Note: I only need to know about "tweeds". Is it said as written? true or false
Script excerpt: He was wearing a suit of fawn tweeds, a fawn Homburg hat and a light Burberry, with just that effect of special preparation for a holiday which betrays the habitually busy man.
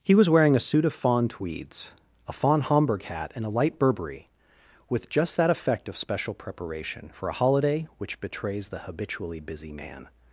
true